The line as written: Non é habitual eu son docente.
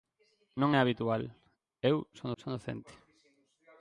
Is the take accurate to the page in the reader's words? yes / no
no